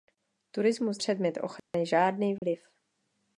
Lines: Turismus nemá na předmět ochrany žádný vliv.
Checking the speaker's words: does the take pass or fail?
fail